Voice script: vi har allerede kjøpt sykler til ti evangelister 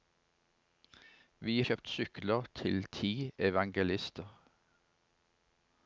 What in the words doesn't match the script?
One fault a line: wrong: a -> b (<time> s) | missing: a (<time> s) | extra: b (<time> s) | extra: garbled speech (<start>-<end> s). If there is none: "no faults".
missing: har allerede (1.6 s)